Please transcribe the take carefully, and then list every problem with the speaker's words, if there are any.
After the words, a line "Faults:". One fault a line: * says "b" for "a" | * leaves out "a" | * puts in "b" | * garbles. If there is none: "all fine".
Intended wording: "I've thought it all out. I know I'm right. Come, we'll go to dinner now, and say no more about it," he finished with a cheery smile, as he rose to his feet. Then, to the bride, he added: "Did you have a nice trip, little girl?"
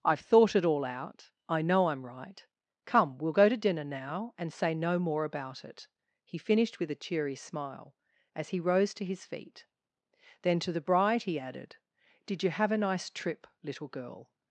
"I've thought it all out. I know I'm right. Come, we'll go to dinner now, and say no more about it," he finished with a cheery smile, as he rose to his feet. Then, to the bride, he added: "Did you have a nice trip, little girl?"
Faults:
all fine